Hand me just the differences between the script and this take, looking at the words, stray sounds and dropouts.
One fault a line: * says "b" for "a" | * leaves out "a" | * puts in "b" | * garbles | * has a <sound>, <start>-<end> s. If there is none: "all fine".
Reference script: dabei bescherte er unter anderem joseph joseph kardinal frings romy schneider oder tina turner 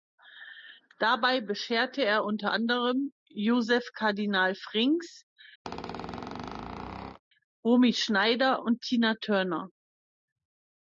* leaves out "joseph"
* has a squeak, 5.6-7.2 s
* says "und" for "oder"